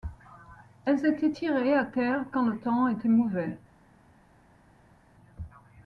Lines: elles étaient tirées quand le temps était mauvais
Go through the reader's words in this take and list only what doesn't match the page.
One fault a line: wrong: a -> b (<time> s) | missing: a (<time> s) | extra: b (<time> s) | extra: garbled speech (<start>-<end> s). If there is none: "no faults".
extra: à terre (1.7 s)